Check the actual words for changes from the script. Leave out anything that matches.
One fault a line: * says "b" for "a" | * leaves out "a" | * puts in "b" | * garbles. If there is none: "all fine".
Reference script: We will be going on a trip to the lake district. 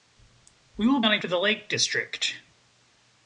* leaves out "be going"
* leaves out "trip"